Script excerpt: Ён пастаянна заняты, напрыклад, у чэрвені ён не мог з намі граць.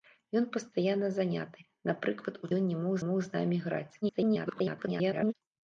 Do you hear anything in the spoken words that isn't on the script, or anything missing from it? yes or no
yes